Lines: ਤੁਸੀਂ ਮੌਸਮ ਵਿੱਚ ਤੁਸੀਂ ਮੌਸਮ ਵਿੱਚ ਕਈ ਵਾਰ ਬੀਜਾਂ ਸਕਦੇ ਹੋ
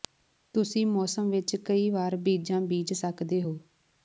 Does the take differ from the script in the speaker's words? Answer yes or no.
yes